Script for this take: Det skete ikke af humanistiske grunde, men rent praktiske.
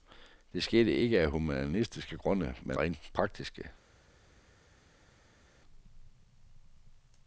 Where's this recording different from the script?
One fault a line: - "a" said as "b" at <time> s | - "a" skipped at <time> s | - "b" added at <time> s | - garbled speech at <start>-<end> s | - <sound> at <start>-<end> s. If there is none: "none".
none